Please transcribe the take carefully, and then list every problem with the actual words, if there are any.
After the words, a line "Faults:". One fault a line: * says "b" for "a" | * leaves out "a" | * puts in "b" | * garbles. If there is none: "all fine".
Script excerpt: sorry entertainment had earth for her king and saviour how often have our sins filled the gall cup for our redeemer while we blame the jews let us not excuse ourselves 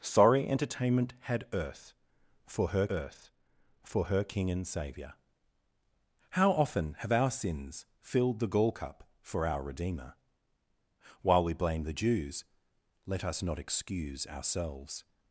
sorry entertainment had earth for her earth for her king and saviour how often have our sins filled the gall cup for our redeemer while we blame the jews let us not excuse ourselves
Faults:
* puts in "earth for her"